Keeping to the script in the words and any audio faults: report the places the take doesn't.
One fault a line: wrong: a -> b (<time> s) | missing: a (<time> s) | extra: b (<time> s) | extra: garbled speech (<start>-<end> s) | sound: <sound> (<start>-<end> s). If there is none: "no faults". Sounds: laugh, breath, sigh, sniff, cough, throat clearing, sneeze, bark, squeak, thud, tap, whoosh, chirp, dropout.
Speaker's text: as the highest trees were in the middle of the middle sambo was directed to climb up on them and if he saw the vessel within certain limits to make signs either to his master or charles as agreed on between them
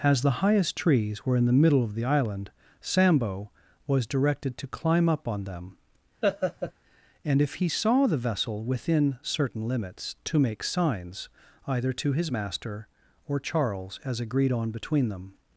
wrong: middle -> island (2.0 s)
sound: laugh (6.2-6.7 s)